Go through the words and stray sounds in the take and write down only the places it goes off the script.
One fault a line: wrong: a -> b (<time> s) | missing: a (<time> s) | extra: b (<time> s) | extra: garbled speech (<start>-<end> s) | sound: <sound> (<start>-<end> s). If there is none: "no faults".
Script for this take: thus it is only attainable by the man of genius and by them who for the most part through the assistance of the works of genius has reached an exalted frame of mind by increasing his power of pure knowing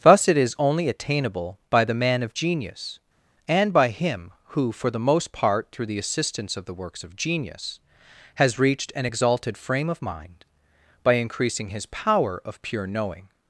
wrong: them -> him (3.9 s)